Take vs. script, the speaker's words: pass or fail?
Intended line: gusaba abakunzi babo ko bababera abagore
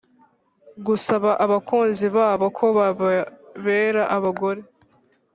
pass